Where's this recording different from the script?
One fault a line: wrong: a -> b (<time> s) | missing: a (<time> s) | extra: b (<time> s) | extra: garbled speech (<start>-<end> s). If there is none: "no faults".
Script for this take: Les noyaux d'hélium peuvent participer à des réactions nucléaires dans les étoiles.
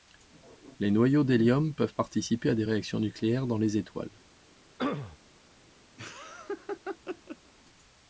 no faults